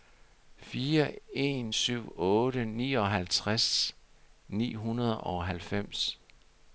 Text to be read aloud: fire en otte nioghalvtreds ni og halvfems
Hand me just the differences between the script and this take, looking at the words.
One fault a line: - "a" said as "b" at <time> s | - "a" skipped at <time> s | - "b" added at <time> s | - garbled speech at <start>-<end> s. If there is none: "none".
- "syv" added at 1.7 s
- "hundrede" added at 4.7 s